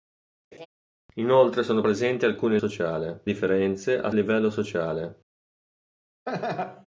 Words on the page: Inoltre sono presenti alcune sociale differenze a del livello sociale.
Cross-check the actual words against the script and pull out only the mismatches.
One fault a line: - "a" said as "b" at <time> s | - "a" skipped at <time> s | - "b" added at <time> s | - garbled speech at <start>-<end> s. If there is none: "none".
none